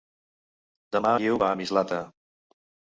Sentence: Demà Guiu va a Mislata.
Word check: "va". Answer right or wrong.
right